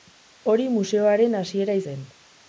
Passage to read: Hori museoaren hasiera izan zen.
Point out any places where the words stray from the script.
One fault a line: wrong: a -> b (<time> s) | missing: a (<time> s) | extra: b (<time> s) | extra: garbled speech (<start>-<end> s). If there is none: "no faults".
missing: izan (1.8 s)